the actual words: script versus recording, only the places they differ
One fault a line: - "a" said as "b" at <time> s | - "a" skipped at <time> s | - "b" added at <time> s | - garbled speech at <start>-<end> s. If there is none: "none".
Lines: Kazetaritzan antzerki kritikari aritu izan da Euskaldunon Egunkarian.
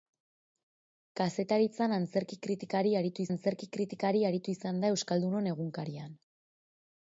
- "antzerki kritikari aritu" added at 3.3 s